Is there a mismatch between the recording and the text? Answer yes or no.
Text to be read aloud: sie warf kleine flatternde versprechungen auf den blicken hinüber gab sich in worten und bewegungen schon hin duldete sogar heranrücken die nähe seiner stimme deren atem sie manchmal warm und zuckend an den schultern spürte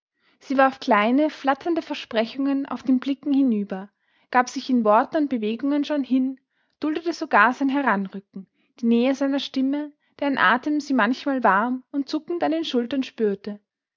yes